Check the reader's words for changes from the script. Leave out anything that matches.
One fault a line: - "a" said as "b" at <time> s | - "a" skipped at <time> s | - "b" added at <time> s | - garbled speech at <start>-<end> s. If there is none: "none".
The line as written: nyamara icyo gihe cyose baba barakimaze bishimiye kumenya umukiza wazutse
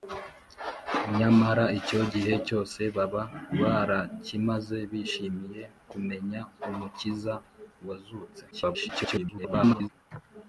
- garbled speech at 8.5-9.9 s